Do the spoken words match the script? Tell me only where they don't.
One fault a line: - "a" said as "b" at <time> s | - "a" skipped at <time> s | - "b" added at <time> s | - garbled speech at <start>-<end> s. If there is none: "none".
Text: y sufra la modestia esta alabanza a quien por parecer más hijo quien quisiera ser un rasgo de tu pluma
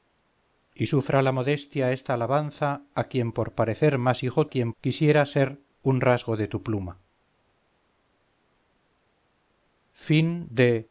none